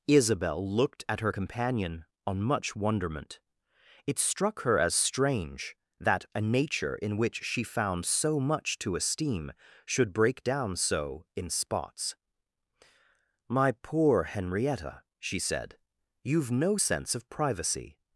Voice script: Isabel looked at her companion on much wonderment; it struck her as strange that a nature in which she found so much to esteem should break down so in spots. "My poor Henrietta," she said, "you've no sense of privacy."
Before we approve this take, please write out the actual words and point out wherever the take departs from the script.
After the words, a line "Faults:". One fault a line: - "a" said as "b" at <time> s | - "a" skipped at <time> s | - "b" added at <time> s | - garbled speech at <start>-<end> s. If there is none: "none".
Isabel looked at her companion on much wonderment; it struck her as strange that a nature in which she found so much to esteem should break down so in spots. "My poor Henrietta," she said, "you've no sense of privacy."
Faults:
none